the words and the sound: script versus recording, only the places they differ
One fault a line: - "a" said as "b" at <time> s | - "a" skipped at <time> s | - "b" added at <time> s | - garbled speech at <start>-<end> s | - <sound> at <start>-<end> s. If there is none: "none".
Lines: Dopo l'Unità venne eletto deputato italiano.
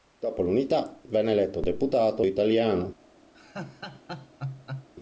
- laugh at 3.3-4.9 s